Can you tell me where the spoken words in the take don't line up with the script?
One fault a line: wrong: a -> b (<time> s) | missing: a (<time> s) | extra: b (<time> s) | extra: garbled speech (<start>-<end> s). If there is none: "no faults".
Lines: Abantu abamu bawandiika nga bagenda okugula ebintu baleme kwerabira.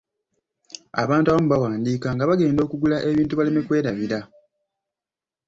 no faults